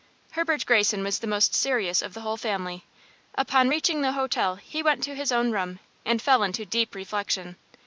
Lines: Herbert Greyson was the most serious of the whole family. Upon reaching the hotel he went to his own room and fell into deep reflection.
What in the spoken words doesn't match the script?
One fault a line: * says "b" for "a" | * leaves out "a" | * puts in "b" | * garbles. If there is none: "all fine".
all fine